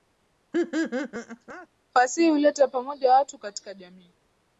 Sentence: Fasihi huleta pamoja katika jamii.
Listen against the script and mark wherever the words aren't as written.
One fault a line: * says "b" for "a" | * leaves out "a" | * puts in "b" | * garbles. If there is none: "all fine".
* puts in "watu"